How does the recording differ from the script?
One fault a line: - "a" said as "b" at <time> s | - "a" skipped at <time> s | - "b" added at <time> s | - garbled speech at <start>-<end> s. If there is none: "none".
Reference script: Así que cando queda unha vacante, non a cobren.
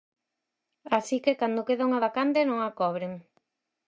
none